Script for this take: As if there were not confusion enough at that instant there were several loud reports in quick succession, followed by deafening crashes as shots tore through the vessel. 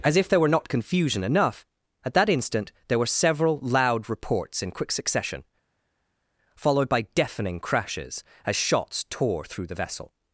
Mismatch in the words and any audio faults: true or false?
false